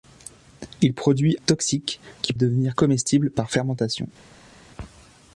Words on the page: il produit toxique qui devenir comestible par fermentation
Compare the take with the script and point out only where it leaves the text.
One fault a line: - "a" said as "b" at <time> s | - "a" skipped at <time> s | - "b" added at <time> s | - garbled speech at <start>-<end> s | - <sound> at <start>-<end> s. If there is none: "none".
none